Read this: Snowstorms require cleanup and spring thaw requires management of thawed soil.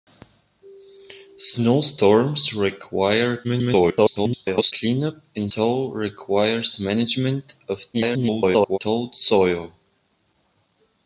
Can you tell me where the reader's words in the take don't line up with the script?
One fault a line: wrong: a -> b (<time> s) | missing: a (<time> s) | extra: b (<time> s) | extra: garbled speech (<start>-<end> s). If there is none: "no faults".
extra: garbled speech (3.4-4.7 s)
missing: spring (5.5 s)
extra: garbled speech (7.9-8.8 s)